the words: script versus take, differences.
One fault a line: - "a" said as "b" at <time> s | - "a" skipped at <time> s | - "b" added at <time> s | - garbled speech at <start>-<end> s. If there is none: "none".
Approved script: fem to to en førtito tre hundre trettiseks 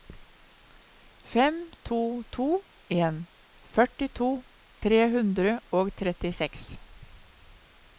- "og" added at 5.8 s